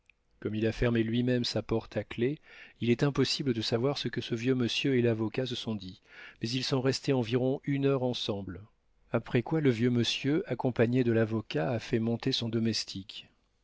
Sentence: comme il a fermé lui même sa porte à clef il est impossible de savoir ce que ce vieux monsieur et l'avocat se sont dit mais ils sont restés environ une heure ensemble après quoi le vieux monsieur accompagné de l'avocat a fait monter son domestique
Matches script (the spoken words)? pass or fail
pass